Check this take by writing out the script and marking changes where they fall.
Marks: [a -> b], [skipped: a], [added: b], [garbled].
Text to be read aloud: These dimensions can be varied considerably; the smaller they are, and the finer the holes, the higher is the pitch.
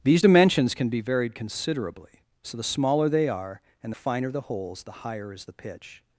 These dimensions can be varied considerably; [added: so] the smaller they are, and the finer the holes, the higher is the pitch.